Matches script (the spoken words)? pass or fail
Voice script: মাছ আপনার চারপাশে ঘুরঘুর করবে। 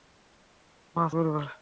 fail